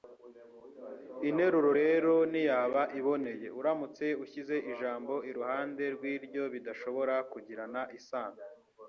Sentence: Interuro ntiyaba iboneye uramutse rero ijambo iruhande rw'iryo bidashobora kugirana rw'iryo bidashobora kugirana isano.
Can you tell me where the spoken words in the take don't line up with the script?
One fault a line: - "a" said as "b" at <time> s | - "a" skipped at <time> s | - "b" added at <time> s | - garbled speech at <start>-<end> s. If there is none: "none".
- "rero" added at 1.8 s
- "rero" said as "ushyize" at 4.2 s
- "rw'iryo bidashobora kugirana" skipped at 7.8 s